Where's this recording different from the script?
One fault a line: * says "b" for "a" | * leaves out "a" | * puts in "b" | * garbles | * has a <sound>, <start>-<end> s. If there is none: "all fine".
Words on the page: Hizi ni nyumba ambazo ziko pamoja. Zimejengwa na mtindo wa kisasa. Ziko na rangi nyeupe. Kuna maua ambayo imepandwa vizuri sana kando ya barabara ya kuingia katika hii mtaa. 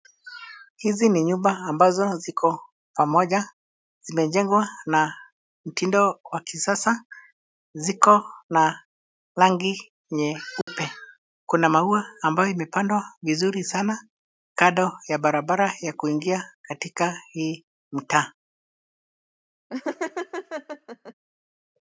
* has a dropout, 10.6-10.7 s
* has a laugh, 19.7-21.1 s